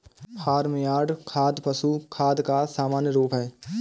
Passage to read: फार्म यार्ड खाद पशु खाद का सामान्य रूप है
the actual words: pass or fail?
pass